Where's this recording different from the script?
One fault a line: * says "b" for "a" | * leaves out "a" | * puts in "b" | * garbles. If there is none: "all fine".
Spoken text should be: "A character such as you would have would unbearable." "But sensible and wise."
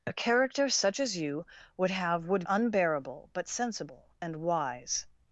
all fine